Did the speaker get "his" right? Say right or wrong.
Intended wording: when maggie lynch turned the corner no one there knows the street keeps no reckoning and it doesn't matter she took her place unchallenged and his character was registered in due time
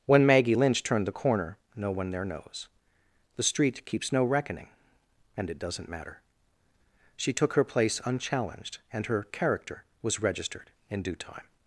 wrong